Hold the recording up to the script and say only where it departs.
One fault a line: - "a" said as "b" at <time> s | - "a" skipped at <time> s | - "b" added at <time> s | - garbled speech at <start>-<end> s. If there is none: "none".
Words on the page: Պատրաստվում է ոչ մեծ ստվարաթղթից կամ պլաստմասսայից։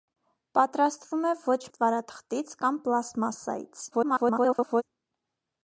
- "մեծ" skipped at 1.6 s
- garbled speech at 3.9-4.8 s